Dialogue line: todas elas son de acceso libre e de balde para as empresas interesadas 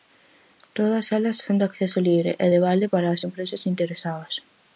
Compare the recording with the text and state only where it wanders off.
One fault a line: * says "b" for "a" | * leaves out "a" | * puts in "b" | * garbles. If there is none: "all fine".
all fine